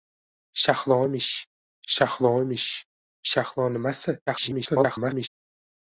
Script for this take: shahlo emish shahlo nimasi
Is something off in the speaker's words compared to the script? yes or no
yes